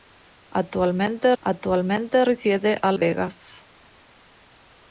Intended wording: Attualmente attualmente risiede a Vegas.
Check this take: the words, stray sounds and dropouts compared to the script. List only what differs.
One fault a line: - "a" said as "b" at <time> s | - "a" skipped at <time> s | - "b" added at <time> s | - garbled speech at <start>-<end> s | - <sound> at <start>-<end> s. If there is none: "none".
none